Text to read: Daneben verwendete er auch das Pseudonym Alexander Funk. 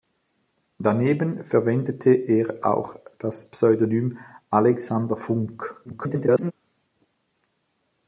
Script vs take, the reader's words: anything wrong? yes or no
yes